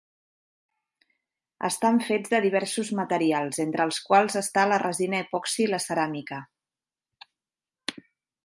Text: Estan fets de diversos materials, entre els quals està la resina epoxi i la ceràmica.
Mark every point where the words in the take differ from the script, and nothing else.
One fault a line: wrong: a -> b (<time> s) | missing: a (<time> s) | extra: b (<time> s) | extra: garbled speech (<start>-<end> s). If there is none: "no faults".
no faults